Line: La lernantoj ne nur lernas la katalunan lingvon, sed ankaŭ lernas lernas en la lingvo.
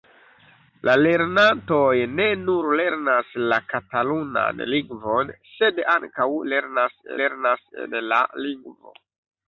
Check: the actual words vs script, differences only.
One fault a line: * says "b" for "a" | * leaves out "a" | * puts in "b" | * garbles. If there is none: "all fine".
all fine